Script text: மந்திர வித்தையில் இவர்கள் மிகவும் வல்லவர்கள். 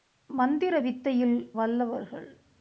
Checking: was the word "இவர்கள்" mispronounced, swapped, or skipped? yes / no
yes